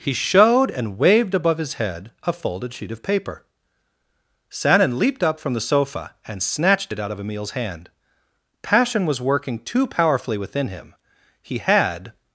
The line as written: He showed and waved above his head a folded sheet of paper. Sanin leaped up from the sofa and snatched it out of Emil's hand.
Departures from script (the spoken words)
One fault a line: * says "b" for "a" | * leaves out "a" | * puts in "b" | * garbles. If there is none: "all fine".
* puts in "Passion was working too powerfully within him he had"